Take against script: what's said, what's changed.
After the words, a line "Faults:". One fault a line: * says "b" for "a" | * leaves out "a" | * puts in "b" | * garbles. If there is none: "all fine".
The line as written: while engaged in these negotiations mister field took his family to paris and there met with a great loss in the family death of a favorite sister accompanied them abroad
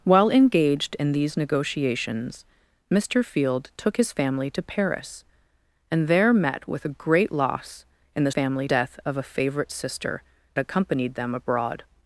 while engaged in these negotiations mister field took his family to paris and there met with a great loss in the family death of a favorite sister accompanied them abroad
Faults:
all fine